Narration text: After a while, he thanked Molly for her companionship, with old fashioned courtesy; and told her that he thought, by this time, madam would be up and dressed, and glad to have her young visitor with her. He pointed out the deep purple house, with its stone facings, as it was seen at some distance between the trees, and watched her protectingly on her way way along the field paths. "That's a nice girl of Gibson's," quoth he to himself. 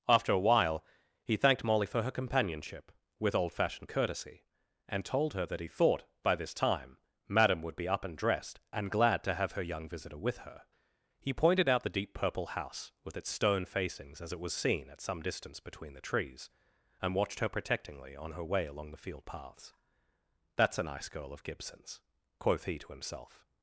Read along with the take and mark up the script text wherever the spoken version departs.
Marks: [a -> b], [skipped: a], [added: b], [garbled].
After a while, he thanked Molly for her companionship, with old fashioned courtesy; and told her that he thought, by this time, madam would be up and dressed, and glad to have her young visitor with her. He pointed out the deep purple house, with its stone facings, as it was seen at some distance between the trees, and watched her protectingly on her way [skipped: way] along the field paths. "That's a nice girl of Gibson's," quoth he to himself.